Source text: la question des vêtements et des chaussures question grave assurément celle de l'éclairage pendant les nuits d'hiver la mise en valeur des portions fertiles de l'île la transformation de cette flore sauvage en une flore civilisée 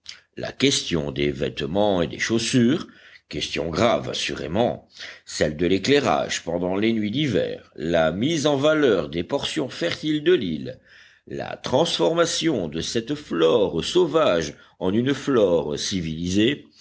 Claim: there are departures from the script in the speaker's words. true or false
false